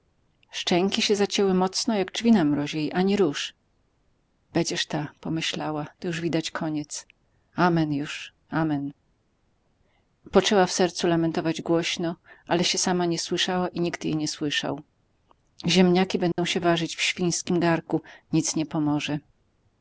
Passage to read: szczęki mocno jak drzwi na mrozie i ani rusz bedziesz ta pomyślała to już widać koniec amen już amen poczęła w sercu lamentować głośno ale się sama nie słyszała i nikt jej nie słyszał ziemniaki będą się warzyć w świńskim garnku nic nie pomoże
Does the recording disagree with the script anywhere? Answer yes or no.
yes